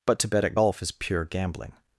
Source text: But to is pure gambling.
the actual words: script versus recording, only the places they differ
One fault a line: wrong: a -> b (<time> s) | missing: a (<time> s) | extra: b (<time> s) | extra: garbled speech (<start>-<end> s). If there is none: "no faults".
extra: bet at golf (0.3 s)